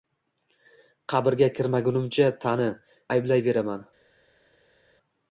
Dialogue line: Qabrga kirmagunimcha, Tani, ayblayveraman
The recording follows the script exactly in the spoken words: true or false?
true